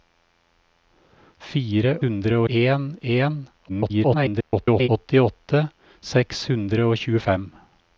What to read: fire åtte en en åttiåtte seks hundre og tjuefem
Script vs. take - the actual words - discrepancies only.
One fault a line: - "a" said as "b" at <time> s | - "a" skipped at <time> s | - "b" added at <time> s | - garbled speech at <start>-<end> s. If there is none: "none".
- "åtte" said as "hundre" at 2.0 s
- garbled speech at 3.7-4.9 s